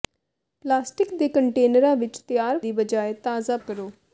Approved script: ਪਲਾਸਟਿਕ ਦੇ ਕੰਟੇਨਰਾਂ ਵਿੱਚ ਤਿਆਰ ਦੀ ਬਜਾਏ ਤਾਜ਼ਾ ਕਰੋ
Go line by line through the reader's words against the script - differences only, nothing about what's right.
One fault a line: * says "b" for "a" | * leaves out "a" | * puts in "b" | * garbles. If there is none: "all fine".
all fine